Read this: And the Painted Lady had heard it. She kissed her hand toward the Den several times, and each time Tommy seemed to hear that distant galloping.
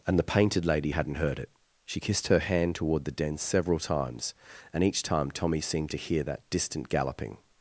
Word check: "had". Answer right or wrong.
wrong